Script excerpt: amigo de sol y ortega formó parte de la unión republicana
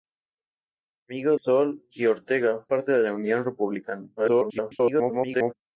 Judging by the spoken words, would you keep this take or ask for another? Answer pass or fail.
fail